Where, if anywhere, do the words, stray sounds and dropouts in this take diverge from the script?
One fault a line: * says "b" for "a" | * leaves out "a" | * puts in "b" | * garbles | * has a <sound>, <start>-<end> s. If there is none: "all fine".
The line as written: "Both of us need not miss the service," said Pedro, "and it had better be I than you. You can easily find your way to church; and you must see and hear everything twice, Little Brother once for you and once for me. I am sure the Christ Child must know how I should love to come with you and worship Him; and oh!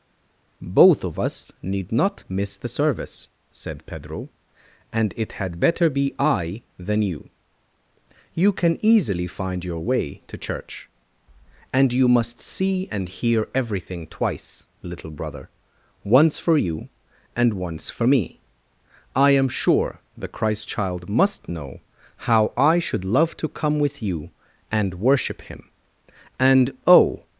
all fine